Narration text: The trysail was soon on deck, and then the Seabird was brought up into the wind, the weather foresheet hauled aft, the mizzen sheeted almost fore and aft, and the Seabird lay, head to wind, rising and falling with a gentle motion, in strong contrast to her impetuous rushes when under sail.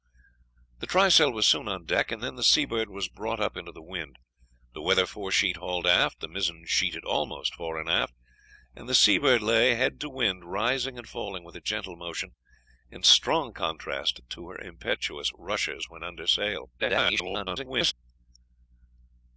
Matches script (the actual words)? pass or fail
fail